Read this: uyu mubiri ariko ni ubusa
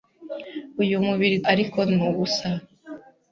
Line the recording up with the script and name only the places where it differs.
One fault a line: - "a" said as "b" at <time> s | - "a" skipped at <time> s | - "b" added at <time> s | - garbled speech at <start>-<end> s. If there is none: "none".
none